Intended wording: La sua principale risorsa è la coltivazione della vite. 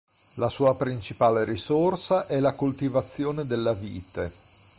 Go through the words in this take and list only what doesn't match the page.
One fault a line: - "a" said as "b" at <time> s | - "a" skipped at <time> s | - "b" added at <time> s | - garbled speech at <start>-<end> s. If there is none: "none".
none